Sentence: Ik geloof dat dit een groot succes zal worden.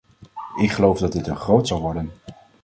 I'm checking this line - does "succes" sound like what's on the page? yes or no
no